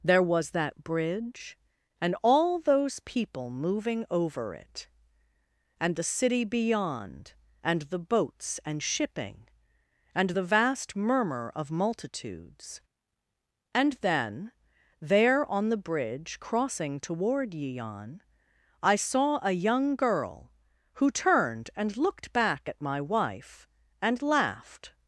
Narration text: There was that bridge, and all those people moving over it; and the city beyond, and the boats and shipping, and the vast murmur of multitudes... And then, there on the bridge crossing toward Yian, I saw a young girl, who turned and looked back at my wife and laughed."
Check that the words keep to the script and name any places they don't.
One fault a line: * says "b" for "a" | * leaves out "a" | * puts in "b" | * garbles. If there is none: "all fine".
all fine